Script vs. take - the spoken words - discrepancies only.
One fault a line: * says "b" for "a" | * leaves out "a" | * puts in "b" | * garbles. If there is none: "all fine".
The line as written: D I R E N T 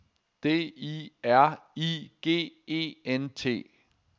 * puts in "I G"